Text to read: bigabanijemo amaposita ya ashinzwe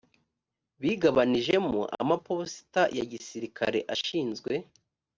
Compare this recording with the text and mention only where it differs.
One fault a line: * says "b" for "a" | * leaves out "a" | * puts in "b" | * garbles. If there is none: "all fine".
* puts in "gisirikare"